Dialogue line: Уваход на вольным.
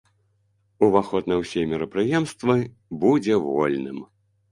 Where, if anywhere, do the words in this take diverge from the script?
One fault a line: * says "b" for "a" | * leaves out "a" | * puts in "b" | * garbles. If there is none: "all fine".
* puts in "ўсе мерапрыемствы будзе"